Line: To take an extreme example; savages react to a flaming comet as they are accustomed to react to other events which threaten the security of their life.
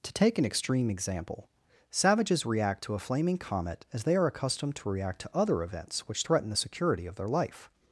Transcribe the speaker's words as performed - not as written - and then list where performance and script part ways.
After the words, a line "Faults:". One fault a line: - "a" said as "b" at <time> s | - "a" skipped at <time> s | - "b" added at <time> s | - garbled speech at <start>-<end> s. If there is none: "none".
To take an extreme example; savages react to a flaming comet as they are accustomed to react to other events which threaten the security of their life.
Faults:
none